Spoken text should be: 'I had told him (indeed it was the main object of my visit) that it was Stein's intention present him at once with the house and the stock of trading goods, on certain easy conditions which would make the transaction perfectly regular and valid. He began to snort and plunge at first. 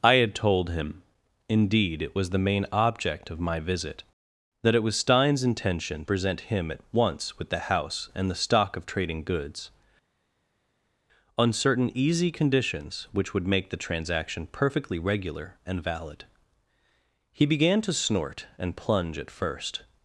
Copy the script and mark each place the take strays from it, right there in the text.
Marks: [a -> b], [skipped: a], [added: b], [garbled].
'I had told him (indeed it was the main object of my visit) that it was Stein's intention present him at once with the house and the stock of trading goods, on certain easy conditions which would make the transaction perfectly regular and valid. He began to snort and plunge at first.